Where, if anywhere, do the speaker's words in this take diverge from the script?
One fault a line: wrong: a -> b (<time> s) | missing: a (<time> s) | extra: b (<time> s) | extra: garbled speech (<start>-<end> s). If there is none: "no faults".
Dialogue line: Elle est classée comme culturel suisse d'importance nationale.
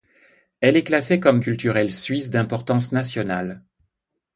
no faults